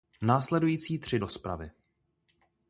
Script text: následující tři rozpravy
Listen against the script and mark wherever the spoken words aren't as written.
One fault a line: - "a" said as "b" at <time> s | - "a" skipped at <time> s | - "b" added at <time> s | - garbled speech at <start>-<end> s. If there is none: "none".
none